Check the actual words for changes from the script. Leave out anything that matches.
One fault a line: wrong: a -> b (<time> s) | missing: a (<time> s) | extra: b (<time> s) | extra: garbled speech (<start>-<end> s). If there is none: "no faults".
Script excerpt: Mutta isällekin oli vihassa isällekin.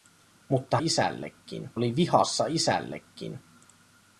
no faults